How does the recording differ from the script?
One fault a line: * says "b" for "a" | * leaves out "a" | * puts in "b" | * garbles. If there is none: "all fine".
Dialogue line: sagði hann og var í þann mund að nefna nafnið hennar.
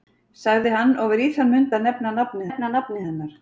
* puts in "nefna nafnið"